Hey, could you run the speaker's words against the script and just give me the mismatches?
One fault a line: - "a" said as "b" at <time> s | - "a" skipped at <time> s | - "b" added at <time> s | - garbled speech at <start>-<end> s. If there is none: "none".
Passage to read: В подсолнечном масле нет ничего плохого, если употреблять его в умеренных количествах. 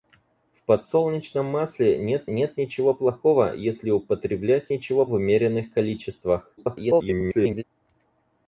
- "нет" added at 2.3 s
- "его" said as "ничего" at 4.7 s
- garbled speech at 6.6-7.6 s